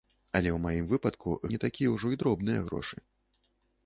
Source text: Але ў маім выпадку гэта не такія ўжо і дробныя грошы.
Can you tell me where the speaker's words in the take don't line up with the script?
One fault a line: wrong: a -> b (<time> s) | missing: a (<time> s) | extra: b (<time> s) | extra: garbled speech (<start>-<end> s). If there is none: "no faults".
missing: гэта (1.4 s)